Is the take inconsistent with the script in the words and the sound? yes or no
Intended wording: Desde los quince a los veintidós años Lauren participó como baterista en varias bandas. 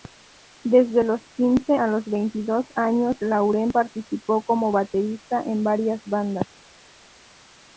no